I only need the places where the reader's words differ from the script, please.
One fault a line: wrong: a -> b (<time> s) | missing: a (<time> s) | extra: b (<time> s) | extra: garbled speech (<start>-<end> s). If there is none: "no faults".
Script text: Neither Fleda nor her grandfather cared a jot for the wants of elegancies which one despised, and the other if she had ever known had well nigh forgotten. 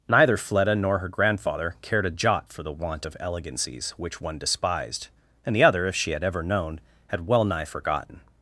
wrong: wants -> want (2.7 s)